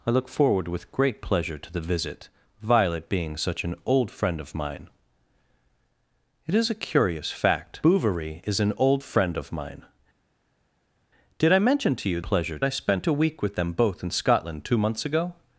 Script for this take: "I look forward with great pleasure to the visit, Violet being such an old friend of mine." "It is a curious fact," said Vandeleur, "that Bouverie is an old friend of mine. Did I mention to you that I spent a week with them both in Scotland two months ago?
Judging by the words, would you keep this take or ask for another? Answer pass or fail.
fail